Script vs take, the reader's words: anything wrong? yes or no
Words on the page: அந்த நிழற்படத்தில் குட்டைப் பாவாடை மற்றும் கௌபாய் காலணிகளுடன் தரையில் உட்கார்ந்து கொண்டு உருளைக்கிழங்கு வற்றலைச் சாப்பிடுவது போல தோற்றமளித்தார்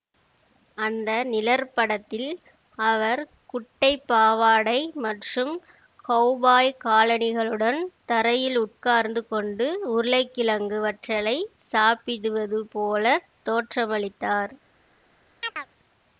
yes